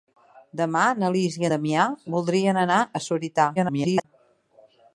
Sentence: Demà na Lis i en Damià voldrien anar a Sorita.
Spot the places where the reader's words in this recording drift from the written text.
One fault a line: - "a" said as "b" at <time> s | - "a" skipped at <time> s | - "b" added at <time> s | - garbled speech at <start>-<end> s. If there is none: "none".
- "en" skipped at 1.4 s
- garbled speech at 3.6-4.0 s